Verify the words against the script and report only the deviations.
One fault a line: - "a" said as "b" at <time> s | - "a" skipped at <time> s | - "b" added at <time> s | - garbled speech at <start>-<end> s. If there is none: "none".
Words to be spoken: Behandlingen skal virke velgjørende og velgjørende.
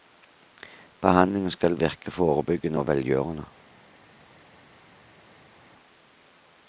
- "velgjørende" said as "forebyggende" at 2.1 s